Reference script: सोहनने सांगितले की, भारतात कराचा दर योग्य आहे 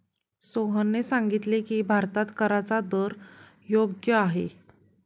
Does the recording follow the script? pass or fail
pass